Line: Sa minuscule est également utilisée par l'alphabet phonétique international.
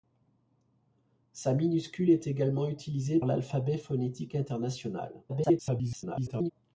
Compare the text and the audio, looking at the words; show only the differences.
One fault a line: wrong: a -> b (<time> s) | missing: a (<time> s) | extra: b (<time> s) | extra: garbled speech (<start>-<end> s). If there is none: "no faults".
missing: par (3.2 s)
extra: garbled speech (5.3-6.5 s)